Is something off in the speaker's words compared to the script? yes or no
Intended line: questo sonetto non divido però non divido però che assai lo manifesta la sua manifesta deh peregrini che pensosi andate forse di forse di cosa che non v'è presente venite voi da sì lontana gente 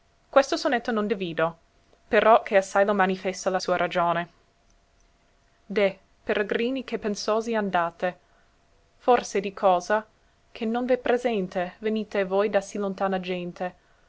yes